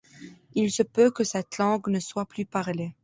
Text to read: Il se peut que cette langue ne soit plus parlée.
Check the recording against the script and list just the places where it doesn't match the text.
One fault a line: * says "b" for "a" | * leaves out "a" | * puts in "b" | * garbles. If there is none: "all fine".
all fine